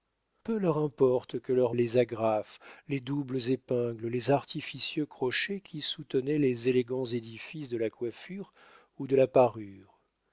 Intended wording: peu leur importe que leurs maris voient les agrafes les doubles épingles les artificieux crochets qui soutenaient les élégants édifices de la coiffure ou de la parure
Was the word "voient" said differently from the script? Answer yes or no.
yes